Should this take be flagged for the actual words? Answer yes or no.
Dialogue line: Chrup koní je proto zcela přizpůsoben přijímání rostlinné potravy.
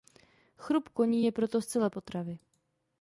yes